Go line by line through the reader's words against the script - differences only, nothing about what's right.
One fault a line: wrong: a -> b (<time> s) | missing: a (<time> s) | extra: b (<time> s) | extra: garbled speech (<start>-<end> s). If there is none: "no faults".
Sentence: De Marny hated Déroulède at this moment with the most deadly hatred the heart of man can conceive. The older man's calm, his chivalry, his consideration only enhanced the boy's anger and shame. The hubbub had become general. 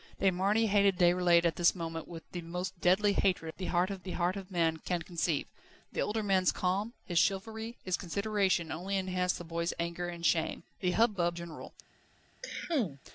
extra: the heart of (4.0 s)
missing: had become (11.4 s)